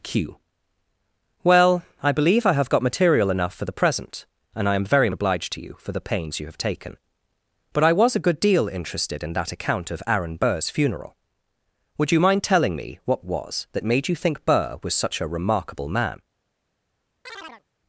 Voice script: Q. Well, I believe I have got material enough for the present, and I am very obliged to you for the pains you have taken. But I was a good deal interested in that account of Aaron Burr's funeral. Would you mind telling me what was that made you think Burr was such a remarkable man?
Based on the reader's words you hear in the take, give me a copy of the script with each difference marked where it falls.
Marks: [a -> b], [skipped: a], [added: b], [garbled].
Q. Well, I believe I have got material enough for the present, and I am very obliged to you for the pains you have taken. But I was a good deal interested in that account of Aaron Burr's funeral. Would you mind telling me what was that made you think Burr was such a remarkable man?